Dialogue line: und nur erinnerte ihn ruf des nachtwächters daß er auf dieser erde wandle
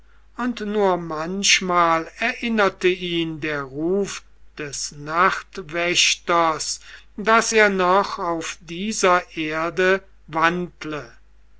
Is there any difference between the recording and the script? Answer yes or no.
yes